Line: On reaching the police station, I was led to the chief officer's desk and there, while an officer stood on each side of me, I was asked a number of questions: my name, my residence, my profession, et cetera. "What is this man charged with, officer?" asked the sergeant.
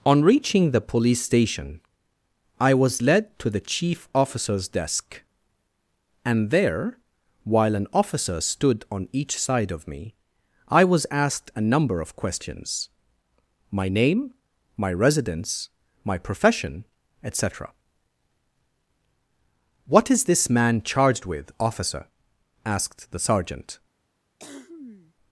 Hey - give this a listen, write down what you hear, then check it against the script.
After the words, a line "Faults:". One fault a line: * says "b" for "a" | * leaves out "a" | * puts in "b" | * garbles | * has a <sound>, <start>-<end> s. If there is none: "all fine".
On reaching the police station, I was led to the chief officer's desk and there, while an officer stood on each side of me, I was asked a number of questions: my name, my residence, my profession, et cetera. "What is this man charged with, officer?" asked the sergeant.
Faults:
* has a cough, 24.4-25.1 s